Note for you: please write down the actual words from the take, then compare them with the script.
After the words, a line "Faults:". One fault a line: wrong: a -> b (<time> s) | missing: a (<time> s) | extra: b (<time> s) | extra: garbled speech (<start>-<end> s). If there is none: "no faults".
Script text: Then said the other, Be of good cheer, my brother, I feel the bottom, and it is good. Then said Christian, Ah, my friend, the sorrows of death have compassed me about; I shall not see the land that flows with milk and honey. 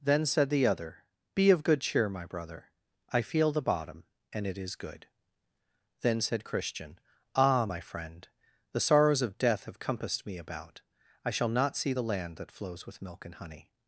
Then said the other, Be of good cheer, my brother, I feel the bottom, and it is good. Then said Christian, Ah, my friend, the sorrows of death have compassed me about; I shall not see the land that flows with milk and honey.
Faults:
no faults